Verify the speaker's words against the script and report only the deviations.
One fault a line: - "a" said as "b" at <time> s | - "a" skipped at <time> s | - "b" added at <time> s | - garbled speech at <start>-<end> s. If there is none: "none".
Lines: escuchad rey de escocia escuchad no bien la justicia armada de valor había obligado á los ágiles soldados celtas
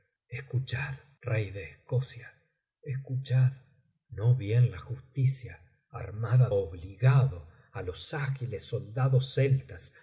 - "de valor había" skipped at 6.5 s